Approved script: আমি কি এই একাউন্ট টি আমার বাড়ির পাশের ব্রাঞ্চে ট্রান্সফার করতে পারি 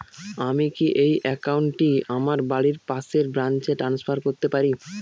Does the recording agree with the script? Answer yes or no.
yes